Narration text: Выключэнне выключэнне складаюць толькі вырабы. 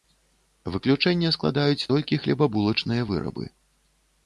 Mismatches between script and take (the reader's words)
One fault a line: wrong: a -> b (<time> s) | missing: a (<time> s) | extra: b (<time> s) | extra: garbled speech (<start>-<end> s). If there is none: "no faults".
missing: выключэнне (1.3 s)
extra: хлебабулачныя (2.3 s)